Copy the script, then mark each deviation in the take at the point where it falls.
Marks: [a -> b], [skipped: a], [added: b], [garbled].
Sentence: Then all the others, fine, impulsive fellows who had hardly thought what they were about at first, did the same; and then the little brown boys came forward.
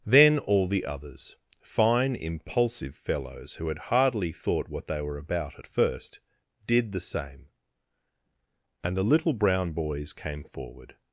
Then all the others, fine, impulsive fellows who had hardly thought what they were about at first, did the same; and [skipped: then] the little brown boys came forward.